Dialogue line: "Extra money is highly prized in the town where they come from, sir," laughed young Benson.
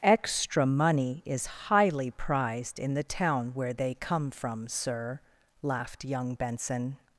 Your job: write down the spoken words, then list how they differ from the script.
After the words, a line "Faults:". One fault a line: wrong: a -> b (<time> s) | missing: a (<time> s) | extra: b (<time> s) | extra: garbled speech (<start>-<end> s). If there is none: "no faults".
"Extra money is highly prized in the town where they come from, sir," laughed young Benson.
Faults:
no faults